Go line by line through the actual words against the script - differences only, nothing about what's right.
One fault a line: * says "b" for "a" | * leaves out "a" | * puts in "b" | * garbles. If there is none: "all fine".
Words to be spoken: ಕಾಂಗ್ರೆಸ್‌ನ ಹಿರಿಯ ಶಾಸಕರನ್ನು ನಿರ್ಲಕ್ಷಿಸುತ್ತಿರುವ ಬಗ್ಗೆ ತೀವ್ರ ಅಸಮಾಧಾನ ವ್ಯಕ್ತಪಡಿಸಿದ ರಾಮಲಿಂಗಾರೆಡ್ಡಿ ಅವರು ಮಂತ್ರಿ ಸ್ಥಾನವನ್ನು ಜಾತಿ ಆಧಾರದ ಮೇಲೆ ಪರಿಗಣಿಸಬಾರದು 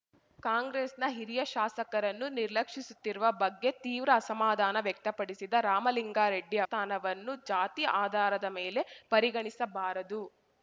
* leaves out "ಅವರು ಮಂತ್ರಿ"